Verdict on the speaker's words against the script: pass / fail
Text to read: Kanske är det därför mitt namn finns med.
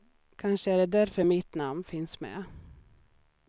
pass